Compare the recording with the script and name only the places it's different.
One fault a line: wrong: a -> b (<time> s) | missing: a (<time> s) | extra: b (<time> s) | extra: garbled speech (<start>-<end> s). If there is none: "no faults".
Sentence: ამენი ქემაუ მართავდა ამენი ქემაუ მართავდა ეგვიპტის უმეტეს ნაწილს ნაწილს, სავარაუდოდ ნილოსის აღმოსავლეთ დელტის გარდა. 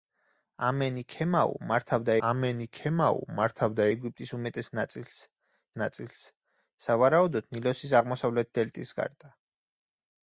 no faults